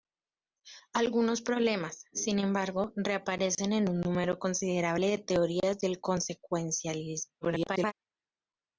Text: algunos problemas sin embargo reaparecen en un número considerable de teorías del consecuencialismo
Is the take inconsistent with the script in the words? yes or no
yes